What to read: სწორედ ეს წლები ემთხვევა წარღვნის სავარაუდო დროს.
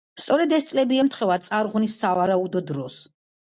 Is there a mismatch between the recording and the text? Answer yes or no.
no